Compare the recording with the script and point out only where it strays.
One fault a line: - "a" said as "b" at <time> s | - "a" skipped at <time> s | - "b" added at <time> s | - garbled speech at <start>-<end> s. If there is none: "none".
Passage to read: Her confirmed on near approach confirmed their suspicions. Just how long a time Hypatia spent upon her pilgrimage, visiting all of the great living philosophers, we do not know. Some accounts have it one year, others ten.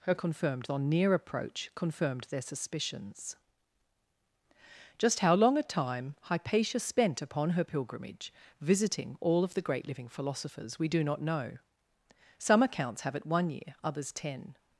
none